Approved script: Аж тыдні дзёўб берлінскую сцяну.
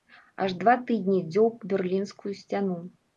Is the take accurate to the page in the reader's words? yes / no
no